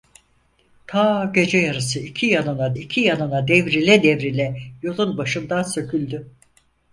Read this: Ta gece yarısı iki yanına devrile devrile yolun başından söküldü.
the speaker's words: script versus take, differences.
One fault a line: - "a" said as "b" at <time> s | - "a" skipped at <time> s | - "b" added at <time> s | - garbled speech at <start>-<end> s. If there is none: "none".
- "iki yanına" added at 2.7 s